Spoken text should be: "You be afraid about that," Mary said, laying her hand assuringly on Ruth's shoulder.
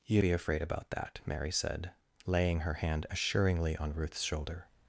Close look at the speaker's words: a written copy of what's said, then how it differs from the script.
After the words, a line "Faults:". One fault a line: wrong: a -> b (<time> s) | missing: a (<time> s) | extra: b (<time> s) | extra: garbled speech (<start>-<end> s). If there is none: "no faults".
"You be afraid about that," Mary said, laying her hand assuringly on Ruth's shoulder.
Faults:
no faults